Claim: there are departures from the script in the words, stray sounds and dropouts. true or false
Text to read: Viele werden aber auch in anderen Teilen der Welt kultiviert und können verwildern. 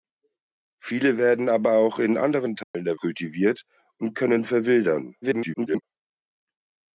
true